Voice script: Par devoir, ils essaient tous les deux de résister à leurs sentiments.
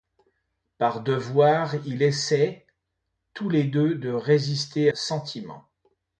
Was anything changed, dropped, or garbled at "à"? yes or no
yes